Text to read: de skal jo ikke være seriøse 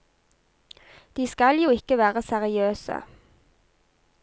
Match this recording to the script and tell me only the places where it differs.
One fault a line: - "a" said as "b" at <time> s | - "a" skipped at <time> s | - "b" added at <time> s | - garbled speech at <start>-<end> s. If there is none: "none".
none